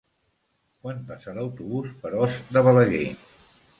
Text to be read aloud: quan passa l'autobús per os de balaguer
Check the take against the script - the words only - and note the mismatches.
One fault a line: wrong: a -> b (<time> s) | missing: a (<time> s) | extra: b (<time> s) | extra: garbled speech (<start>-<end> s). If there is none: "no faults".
no faults